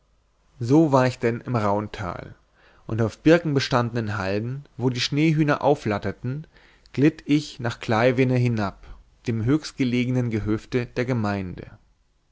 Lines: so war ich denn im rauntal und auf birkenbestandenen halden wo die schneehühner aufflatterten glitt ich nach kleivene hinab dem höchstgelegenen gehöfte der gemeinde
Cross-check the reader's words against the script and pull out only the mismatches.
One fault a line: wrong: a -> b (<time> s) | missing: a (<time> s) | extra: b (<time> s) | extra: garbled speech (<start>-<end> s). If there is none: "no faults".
no faults